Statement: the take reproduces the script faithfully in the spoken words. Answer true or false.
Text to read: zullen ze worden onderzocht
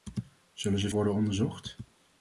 true